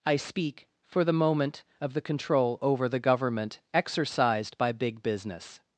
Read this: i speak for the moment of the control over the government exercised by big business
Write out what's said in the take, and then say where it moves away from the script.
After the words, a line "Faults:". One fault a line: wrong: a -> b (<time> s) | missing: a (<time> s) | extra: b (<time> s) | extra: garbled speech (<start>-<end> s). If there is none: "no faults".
i speak for the moment of the control over the government exercised by big business
Faults:
no faults